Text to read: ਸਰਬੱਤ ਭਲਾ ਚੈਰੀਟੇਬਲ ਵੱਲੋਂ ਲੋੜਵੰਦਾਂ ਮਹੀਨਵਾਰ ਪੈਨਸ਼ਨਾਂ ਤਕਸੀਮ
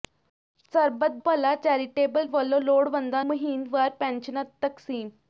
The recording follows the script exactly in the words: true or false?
true